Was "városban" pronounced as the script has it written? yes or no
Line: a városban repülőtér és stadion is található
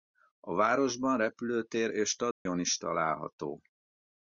yes